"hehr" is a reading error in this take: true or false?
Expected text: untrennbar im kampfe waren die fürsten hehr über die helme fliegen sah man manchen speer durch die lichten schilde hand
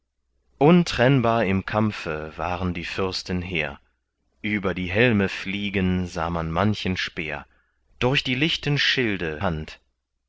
false